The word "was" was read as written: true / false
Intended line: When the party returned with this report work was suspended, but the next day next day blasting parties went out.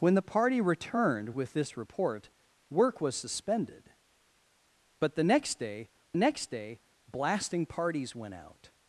true